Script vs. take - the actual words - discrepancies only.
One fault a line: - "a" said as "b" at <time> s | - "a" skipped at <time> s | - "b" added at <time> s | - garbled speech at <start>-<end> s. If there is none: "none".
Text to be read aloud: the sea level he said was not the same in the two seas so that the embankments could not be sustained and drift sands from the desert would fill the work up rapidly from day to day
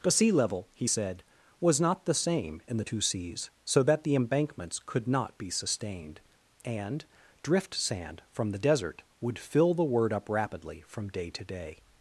- "sands" said as "sand" at 7.7 s
- "work" said as "word" at 9.8 s